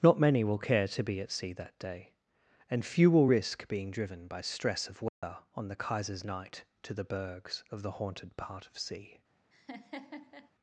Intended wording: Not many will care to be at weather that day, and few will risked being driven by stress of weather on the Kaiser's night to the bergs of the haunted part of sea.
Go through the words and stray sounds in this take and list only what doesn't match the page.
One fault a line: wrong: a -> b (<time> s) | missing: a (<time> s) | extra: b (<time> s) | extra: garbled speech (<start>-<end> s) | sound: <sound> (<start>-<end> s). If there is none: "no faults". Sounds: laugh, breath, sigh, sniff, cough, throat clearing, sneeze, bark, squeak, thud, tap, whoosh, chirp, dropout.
wrong: weather -> sea (1.3 s)
wrong: risked -> risk (3.2 s)
sound: dropout (5.1-5.2 s)
sound: laugh (9.5-10.5 s)